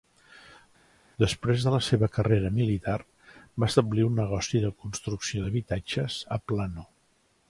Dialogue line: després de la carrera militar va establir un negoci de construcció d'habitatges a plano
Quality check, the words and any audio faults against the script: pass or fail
fail